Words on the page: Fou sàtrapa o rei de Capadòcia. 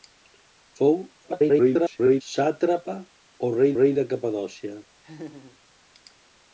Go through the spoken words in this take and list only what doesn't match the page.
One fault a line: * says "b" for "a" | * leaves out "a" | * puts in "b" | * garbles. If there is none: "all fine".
* garbles
* puts in "rei"